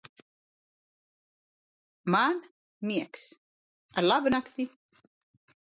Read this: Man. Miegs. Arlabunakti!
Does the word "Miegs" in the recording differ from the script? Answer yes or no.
no